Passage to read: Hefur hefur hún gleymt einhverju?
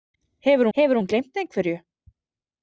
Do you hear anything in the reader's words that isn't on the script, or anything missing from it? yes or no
no